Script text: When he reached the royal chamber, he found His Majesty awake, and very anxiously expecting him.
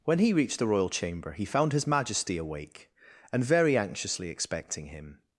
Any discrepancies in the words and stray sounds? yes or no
no